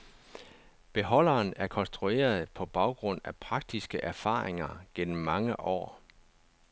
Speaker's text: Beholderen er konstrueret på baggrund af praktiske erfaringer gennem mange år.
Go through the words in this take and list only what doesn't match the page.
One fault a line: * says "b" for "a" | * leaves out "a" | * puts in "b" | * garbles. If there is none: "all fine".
all fine